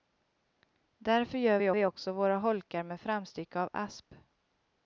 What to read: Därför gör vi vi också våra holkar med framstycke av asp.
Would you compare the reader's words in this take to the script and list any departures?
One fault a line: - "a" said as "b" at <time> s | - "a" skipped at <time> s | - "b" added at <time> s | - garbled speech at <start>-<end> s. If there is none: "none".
none